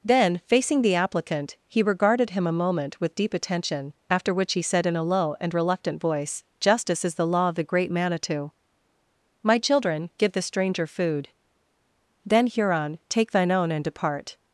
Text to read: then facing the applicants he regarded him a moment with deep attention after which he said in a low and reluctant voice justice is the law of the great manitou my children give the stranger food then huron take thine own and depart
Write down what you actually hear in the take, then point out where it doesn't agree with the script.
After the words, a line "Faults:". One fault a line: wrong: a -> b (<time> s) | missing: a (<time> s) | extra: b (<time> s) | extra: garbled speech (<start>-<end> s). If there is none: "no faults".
then facing the applicant he regarded him a moment with deep attention after which he said in a low and reluctant voice justice is the law of the great manitou my children give the stranger food then huron take thine own and depart
Faults:
wrong: applicants -> applicant (0.9 s)